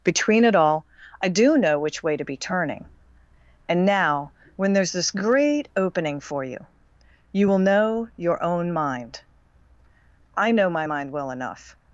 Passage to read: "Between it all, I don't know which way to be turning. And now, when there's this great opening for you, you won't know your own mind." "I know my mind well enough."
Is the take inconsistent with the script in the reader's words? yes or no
yes